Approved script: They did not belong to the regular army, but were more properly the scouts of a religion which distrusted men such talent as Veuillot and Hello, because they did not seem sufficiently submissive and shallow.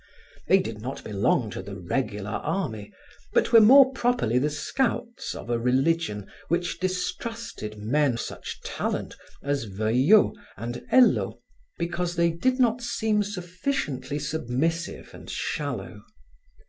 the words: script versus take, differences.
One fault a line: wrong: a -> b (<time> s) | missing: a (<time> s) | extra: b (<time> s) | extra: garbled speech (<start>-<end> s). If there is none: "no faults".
no faults